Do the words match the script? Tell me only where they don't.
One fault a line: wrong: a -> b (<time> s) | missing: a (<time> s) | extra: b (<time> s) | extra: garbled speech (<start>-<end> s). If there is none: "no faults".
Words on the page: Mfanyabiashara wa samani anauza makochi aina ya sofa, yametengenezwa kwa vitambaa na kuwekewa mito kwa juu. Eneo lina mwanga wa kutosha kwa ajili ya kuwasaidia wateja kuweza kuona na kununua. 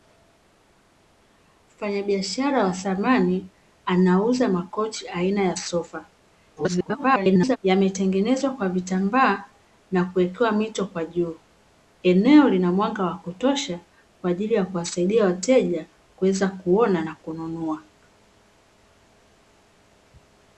extra: garbled speech (6.6-7.6 s)